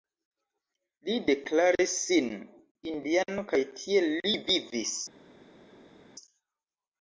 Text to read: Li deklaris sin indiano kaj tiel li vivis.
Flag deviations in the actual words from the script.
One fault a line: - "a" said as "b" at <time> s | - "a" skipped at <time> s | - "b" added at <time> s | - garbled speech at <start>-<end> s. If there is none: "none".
none